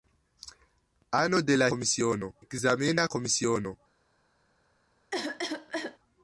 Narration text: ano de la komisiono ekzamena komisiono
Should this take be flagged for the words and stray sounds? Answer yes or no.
yes